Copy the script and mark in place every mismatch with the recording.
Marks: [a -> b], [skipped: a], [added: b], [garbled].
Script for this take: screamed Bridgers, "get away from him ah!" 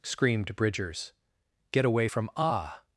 screamed Bridgers, "get away from [skipped: him] ah!"